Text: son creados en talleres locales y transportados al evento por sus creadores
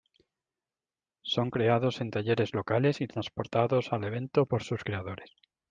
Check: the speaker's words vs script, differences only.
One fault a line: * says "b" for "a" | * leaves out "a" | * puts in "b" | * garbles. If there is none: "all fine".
all fine